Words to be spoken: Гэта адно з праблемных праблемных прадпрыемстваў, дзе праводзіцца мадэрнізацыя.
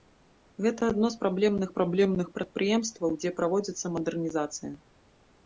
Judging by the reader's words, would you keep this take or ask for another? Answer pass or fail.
pass